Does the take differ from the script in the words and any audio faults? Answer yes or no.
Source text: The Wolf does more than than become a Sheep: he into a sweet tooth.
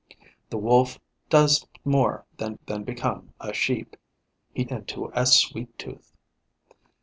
no